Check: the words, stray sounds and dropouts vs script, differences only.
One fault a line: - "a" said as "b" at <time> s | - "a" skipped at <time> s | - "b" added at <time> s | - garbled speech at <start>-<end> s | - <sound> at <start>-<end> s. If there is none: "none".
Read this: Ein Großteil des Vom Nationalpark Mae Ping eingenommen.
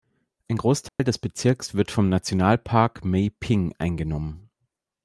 - dropout at 0.9-1.0 s
- "Bezirks wird" added at 1.2 s